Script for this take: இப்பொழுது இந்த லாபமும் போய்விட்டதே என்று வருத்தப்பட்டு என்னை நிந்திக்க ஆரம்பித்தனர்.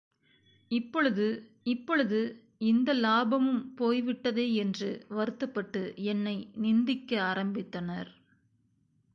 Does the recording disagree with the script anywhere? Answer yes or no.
yes